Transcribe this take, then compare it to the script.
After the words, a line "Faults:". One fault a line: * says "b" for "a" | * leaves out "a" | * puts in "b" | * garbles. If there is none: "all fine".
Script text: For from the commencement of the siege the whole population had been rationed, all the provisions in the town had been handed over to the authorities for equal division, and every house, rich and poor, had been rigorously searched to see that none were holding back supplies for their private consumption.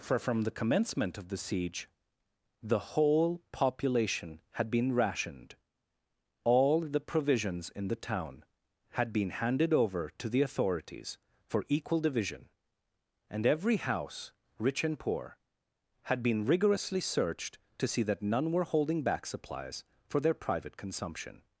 For from the commencement of the siege the whole population had been rationed, all the provisions in the town had been handed over to the authorities for equal division, and every house, rich and poor, had been rigorously searched to see that none were holding back supplies for their private consumption.
Faults:
all fine